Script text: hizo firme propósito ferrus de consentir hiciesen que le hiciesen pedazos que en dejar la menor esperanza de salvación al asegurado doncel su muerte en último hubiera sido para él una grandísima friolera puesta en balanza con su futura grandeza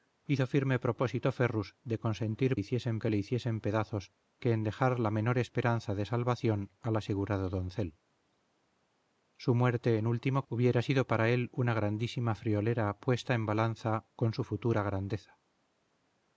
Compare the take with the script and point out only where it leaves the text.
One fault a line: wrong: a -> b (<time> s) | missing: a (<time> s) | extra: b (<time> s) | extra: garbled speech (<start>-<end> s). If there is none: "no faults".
no faults